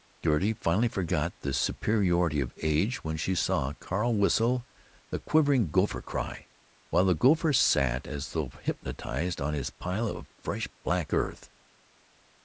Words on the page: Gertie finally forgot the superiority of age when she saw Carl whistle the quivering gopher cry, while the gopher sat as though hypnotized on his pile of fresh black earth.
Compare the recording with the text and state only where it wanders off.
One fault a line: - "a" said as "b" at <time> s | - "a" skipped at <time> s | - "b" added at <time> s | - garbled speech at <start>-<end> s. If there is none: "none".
none